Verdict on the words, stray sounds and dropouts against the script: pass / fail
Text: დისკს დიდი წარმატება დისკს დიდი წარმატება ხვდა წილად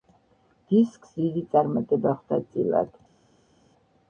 fail